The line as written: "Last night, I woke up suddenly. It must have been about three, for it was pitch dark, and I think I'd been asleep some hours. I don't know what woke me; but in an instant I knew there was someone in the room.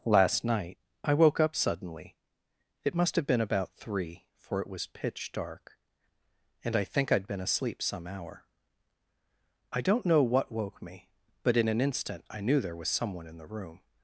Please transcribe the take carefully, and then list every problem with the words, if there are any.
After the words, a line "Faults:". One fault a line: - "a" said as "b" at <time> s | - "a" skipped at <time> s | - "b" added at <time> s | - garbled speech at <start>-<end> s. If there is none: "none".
"Last night, I woke up suddenly. It must have been about three, for it was pitch dark, and I think I'd been asleep some hour. I don't know what woke me; but in an instant I knew there was someone in the room.
Faults:
- "hours" said as "hour" at 8.1 s